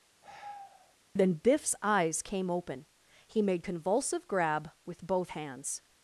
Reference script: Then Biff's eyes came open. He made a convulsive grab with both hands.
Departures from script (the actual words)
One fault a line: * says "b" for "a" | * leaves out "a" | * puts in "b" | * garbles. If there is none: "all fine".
* leaves out "a"